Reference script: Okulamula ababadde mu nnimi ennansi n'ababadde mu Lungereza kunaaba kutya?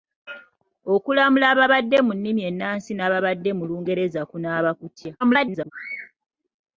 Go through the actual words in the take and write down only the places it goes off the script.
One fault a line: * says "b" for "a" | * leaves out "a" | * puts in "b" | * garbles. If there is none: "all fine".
* garbles